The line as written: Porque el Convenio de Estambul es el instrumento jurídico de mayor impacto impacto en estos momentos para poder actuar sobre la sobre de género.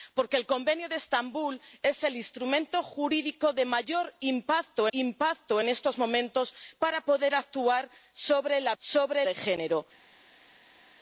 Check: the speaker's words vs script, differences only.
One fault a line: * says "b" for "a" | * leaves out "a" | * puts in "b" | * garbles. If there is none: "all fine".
all fine